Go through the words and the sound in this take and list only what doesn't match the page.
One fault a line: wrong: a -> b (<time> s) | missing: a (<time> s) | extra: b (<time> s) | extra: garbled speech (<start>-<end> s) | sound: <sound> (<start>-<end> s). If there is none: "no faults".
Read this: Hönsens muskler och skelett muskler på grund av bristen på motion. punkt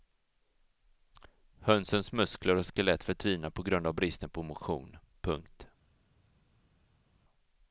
wrong: muskler -> förtvinar (3.0 s)